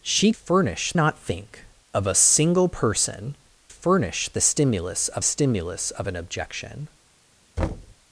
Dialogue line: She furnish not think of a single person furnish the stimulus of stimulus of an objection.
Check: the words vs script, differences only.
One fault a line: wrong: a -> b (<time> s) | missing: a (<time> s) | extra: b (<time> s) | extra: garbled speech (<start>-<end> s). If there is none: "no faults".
no faults